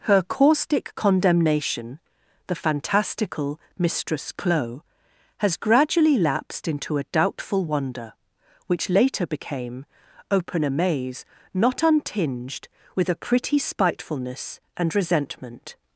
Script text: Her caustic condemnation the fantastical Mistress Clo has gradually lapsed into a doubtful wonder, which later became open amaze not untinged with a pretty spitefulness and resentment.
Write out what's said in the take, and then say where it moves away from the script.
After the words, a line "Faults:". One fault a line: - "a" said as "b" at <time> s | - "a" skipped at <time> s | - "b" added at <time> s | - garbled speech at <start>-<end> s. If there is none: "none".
Her caustic condemnation the fantastical Mistress Clo has gradually lapsed into a doubtful wonder, which later became open amaze not untinged with a pretty spitefulness and resentment.
Faults:
none